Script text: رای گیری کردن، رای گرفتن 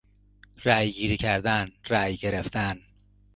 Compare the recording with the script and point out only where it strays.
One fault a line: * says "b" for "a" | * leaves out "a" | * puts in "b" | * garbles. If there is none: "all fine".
all fine